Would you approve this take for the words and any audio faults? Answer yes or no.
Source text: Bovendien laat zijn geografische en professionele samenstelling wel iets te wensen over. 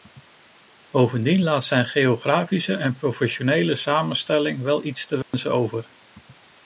no